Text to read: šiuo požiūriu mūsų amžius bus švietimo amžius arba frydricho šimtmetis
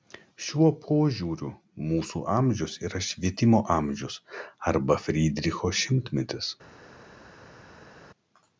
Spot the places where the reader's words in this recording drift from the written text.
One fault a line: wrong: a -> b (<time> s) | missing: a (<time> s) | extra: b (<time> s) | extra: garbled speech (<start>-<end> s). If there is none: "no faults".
wrong: bus -> yra (2.9 s)